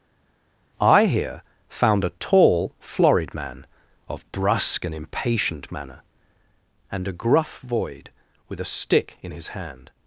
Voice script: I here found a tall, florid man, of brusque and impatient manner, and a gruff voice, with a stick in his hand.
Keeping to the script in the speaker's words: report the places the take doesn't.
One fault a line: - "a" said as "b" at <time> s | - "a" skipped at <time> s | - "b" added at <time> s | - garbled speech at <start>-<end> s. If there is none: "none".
- "voice" said as "void" at 7.6 s